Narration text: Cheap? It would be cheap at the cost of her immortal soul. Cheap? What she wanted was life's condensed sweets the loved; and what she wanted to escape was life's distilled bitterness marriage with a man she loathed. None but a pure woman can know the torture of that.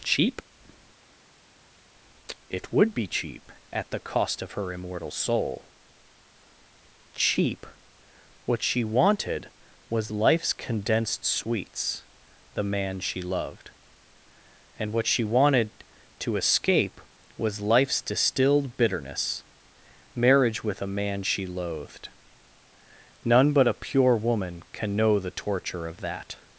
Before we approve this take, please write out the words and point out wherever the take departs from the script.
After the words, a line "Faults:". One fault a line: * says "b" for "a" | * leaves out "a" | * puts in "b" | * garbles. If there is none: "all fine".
Cheap? It would be cheap at the cost of her immortal soul. Cheap? What she wanted was life's condensed sweets the man she loved; and what she wanted to escape was life's distilled bitterness marriage with a man she loathed. None but a pure woman can know the torture of that.
Faults:
* puts in "man she"